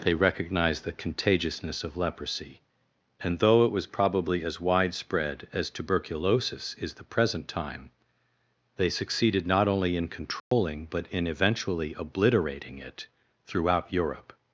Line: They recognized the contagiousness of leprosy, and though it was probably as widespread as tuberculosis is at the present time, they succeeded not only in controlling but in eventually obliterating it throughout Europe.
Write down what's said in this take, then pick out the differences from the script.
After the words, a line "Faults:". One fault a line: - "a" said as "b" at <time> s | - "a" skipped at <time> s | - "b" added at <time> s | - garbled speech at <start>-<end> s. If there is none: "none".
They recognized the contagiousness of leprosy, and though it was probably as widespread as tuberculosis is the present time, they succeeded not only in controlling but in eventually obliterating it throughout Europe.
Faults:
- "at" skipped at 7.0 s